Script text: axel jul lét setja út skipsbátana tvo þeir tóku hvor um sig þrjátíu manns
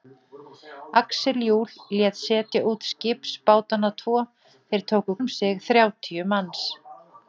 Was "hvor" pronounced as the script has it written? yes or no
no